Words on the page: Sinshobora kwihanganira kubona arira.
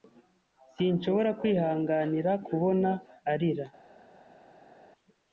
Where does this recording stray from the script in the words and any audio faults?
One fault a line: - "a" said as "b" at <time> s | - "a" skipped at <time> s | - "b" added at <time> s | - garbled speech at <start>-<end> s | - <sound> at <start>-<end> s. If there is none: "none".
none